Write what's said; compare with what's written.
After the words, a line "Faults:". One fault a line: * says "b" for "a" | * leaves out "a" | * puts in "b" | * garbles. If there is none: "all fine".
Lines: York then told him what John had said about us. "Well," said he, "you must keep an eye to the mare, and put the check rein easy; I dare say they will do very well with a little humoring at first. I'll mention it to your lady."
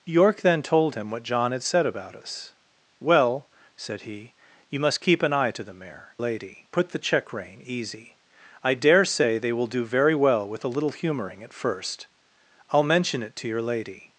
York then told him what John had said about us. "Well," said he, "you must keep an eye to the mare, lady put the check rein easy; I dare say they will do very well with a little humoring at first. I'll mention it to your lady."
Faults:
* says "lady" for "and"